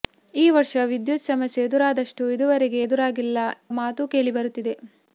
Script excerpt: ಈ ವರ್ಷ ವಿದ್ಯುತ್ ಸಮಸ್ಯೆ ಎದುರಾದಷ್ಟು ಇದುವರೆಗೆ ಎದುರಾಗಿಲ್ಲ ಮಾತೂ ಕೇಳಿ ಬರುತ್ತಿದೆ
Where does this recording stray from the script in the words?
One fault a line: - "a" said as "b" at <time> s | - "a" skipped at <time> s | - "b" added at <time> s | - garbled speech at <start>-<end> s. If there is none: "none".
none